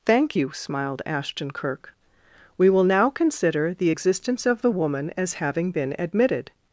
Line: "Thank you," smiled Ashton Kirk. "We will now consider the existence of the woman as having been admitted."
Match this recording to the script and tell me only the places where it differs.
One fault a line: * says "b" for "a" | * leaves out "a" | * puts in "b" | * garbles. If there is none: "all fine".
all fine